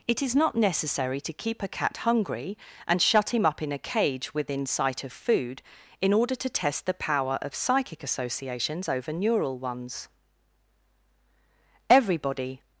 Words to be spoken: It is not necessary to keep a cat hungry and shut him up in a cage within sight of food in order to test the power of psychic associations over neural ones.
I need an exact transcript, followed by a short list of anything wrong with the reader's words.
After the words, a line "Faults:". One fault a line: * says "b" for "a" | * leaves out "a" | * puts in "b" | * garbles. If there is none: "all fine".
It is not necessary to keep a cat hungry and shut him up in a cage within sight of food in order to test the power of psychic associations over neural ones. Everybody
Faults:
* puts in "Everybody"